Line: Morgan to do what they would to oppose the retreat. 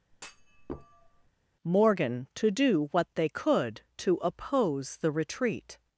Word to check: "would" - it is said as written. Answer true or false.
false